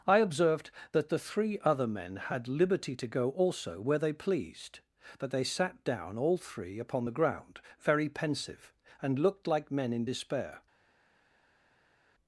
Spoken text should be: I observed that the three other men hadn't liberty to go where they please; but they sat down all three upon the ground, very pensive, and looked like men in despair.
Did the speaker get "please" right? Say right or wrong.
wrong